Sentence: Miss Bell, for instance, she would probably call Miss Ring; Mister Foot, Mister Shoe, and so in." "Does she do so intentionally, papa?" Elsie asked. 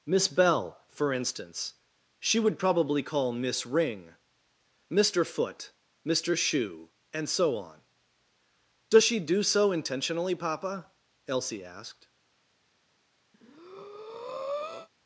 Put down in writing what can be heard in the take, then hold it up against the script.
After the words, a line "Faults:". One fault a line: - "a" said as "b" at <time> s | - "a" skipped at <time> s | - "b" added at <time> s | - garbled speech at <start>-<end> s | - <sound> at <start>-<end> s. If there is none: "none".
Miss Bell, for instance, she would probably call Miss Ring; Mister Foot, Mister Shoe, and so on." "Does she do so intentionally, papa?" Elsie asked.
Faults:
- "in" said as "on" at 7.5 s
- breath at 13.3-14.9 s